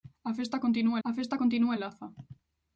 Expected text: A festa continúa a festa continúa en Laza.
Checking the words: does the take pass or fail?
pass